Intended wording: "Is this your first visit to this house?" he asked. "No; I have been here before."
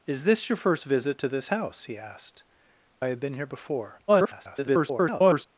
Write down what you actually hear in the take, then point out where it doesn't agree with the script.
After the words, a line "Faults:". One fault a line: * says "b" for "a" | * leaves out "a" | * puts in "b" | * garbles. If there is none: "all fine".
"Is this your first visit to this house?" he asked; "I have been here before." [garbled]
Faults:
* leaves out "No"
* garbles